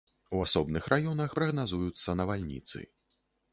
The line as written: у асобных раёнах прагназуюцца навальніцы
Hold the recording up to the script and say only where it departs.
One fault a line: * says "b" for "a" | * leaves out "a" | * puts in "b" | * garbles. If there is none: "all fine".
all fine